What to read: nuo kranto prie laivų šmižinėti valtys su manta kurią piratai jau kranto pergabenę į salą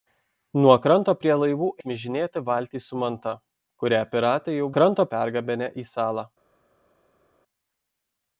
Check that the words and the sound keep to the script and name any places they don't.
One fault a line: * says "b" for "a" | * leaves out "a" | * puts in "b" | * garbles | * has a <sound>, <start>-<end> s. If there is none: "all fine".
all fine